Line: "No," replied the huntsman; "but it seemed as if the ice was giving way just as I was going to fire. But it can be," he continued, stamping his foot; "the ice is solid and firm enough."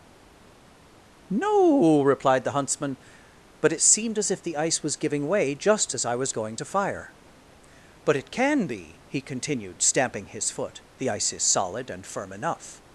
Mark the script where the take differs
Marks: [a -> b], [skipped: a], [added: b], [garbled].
"No," replied the huntsman; "but it seemed as if the ice was giving way just as I was going to fire. But it can be," he continued, stamping his foot; "the ice is solid and firm enough."